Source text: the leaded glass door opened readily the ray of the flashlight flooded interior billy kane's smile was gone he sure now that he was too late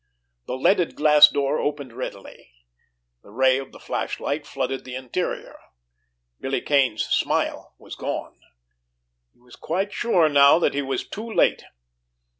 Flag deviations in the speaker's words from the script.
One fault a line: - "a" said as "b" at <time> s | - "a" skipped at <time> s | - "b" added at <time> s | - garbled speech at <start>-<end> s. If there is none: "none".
- "the" added at 4.8 s
- "was quite" added at 9.4 s